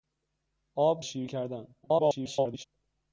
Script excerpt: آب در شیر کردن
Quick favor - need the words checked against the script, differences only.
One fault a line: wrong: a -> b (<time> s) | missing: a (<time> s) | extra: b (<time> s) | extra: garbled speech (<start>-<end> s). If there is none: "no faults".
missing: در (1.0 s)
extra: garbled speech (1.8-2.6 s)